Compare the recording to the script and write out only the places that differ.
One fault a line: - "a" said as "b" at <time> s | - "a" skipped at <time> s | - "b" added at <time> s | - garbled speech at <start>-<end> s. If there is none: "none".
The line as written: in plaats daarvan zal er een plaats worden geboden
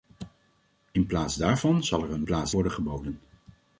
none